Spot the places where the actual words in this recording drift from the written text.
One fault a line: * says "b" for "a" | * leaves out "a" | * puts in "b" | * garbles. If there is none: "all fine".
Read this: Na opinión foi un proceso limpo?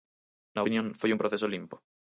all fine